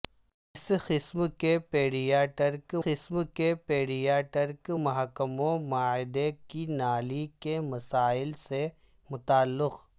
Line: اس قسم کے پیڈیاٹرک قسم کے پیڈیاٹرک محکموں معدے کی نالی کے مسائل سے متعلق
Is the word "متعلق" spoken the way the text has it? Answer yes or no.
yes